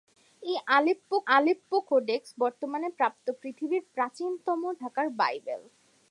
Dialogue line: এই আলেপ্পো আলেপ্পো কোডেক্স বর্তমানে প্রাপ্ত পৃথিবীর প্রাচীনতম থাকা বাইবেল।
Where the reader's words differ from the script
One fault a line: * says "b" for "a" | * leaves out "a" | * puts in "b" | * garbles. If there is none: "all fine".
all fine